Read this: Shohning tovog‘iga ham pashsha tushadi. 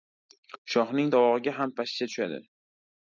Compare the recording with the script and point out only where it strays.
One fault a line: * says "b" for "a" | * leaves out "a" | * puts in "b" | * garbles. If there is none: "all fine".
all fine